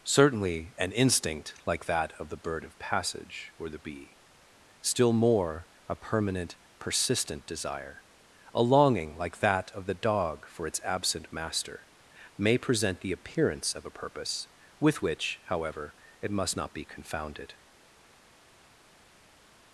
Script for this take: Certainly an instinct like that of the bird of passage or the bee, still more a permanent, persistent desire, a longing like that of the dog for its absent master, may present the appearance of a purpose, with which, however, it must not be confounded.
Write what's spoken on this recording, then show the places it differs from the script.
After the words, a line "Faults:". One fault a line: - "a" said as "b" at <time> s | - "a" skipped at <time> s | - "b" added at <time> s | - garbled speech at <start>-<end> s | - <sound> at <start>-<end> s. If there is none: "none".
Certainly an instinct like that of the bird of passage or the bee, still more a permanent, persistent desire, a longing like that of the dog for its absent master, may present the appearance of a purpose, with which, however, it must not be confounded.
Faults:
none